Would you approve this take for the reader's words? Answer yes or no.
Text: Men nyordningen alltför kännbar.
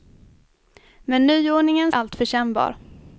yes